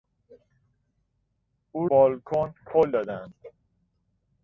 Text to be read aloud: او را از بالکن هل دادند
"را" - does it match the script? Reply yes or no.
no